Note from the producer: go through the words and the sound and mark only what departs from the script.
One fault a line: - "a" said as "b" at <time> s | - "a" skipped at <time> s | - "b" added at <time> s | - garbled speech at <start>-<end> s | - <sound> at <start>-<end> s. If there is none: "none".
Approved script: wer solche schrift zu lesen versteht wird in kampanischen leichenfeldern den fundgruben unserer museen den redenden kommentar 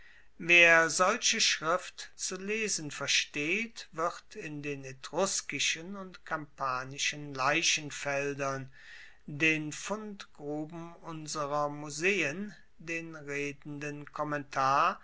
- "den etruskischen und" added at 4.6 s